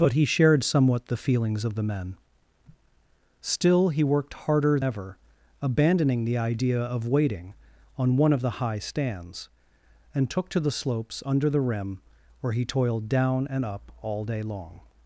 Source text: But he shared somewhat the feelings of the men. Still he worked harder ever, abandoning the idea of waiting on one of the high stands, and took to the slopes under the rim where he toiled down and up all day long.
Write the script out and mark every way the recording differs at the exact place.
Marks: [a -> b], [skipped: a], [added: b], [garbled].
But he shared somewhat the feelings of the men. Still he worked harder ever, abandoning the idea of waiting on one of the high stands, and took to the slopes under the rim where he toiled down and up all day long.